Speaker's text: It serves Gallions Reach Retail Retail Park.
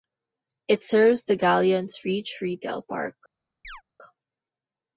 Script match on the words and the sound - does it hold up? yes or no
no